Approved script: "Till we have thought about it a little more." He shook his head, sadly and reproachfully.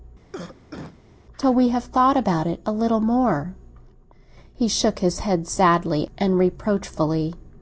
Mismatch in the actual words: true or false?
false